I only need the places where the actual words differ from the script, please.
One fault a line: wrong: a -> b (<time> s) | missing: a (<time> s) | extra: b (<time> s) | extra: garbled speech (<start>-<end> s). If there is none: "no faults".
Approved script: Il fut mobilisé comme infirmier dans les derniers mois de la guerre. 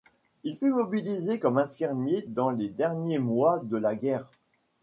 no faults